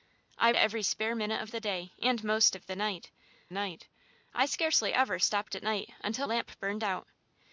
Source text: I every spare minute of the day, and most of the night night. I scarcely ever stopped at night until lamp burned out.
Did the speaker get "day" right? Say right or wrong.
right